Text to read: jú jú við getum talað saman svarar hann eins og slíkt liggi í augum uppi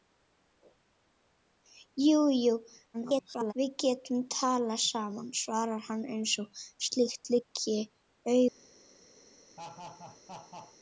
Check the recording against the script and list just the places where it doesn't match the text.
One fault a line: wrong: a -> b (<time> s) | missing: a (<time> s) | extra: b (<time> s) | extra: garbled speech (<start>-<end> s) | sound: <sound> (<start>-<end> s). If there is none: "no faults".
extra: garbled speech (2.9-3.5 s)
sound: laugh (9.6-10.8 s)